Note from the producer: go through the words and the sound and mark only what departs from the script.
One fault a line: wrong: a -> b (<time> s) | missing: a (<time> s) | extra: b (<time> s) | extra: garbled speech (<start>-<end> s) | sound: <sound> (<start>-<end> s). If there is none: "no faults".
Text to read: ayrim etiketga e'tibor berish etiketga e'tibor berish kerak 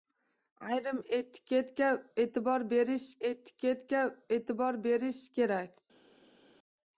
no faults